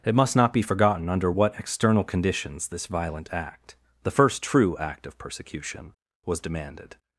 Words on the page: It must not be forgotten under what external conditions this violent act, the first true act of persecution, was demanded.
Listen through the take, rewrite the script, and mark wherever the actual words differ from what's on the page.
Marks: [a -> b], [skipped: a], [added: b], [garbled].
It must not be forgotten under what external conditions this violent act, the first true act of persecution, was demanded.